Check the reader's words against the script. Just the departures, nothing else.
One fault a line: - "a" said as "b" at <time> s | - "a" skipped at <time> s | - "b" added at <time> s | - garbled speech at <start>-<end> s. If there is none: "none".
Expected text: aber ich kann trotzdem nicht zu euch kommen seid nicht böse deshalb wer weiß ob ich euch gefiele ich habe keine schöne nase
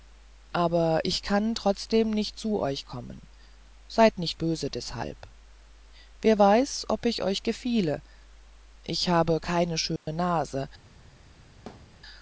none